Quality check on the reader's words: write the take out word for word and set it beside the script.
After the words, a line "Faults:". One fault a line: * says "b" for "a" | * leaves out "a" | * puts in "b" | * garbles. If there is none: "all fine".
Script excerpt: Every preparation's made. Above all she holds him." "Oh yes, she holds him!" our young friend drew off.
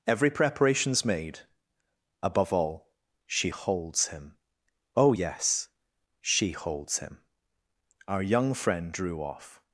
Every preparation's made. Above all she holds him." "Oh yes, she holds him!" our young friend drew off.
Faults:
all fine